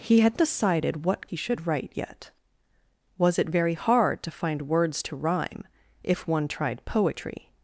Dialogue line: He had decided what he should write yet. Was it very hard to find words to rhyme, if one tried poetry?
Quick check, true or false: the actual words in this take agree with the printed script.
true